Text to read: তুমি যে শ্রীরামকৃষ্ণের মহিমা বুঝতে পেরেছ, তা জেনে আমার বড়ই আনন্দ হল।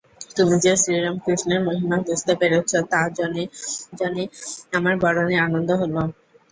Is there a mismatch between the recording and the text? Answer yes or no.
yes